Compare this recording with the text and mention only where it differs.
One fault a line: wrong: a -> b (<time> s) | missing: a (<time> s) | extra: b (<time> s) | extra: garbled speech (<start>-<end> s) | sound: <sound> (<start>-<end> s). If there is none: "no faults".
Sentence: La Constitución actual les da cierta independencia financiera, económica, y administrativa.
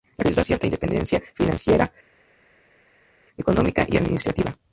missing: Constitución actual (0.2 s)